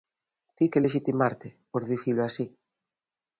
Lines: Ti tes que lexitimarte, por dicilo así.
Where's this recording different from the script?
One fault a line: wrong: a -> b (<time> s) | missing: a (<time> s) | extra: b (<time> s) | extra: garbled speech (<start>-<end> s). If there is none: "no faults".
missing: tes (0.7 s)